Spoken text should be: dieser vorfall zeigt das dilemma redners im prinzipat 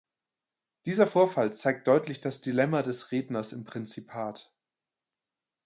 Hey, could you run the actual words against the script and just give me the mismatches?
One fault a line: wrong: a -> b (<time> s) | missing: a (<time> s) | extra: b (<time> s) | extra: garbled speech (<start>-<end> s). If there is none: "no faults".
extra: deutlich (1.9 s)
extra: des (2.8 s)